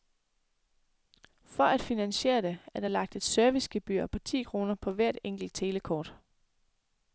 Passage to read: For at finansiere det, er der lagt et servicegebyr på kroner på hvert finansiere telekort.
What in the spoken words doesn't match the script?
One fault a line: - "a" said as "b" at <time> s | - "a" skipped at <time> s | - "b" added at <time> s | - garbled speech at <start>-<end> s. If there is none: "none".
- "ti" added at 4.2 s
- "finansiere" said as "enkelt" at 5.2 s